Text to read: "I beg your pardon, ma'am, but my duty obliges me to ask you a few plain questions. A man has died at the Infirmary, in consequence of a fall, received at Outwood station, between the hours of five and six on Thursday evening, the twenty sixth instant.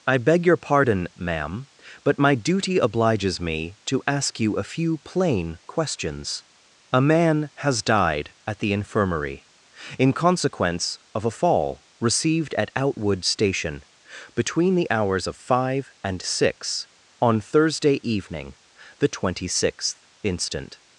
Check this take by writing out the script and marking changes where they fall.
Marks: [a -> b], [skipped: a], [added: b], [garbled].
"I beg your pardon, ma'am, but my duty obliges me to ask you a few plain questions. A man has died at the Infirmary, in consequence of a fall, received at Outwood station, between the hours of five and six on Thursday evening, the twenty sixth instant.